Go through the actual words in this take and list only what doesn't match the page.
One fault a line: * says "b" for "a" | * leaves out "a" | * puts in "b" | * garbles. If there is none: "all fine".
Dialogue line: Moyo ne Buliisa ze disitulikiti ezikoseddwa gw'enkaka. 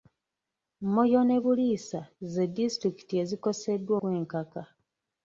all fine